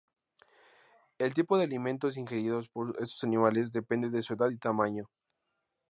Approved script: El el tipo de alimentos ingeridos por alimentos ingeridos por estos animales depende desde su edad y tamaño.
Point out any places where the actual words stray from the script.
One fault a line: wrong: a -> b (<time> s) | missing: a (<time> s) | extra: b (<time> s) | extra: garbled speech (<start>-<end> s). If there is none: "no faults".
missing: el (1.4 s)
missing: alimentos ingeridos por (3.0 s)
wrong: desde -> de (4.1 s)